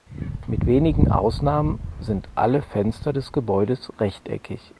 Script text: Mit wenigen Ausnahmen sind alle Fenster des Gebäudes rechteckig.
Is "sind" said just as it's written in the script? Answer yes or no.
yes